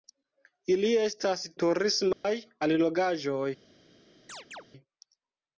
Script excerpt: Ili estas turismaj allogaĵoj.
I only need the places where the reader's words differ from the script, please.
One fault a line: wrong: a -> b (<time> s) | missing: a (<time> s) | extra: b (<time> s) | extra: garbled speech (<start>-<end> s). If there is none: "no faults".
no faults